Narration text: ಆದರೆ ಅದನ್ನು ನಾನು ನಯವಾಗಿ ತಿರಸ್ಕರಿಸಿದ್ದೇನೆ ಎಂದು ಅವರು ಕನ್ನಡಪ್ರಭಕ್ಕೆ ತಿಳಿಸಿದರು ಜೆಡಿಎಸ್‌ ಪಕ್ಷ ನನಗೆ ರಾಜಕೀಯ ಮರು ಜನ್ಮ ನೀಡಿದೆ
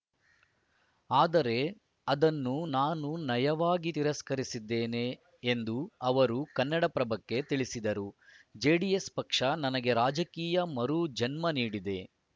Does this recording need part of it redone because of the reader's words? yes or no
no